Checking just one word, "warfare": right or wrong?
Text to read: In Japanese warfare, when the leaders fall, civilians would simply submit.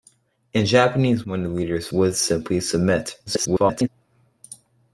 wrong